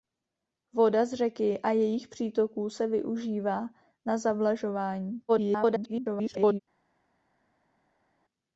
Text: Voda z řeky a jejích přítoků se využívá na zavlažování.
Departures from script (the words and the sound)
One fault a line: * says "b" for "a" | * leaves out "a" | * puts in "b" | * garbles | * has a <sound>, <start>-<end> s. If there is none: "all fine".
* garbles